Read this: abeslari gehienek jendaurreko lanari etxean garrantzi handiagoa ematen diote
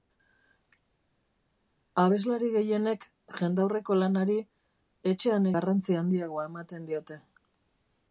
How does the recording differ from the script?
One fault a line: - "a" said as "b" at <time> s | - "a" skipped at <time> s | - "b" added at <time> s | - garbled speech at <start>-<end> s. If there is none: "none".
none